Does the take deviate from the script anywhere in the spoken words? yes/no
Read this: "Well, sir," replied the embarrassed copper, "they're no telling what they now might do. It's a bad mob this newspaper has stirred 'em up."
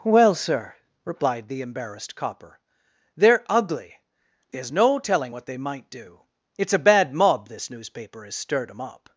yes